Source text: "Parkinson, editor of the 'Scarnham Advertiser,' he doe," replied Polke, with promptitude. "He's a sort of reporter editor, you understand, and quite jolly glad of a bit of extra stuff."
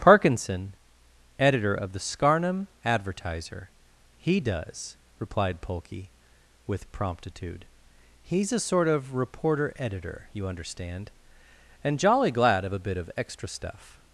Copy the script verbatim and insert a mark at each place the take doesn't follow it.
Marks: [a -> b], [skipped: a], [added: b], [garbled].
"Parkinson, editor of the 'Scarnham Advertiser,' he [doe," -> does] replied Polke, with promptitude. "He's a sort of reporter editor, you understand, and [skipped: quite] jolly glad of a bit of extra stuff."